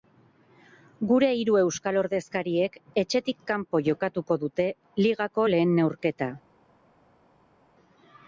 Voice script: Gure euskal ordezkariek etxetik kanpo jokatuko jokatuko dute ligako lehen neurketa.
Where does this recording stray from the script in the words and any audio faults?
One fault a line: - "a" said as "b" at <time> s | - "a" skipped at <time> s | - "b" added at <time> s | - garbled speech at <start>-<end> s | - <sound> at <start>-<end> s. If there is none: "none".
- "hiru" added at 1.4 s
- "jokatuko" skipped at 4.4 s